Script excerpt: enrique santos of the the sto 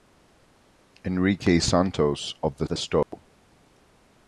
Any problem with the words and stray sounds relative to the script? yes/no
yes